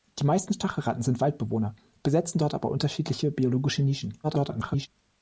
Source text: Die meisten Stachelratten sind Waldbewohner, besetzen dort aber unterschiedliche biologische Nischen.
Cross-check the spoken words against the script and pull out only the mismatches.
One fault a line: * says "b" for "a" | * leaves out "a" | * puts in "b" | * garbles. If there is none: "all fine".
* garbles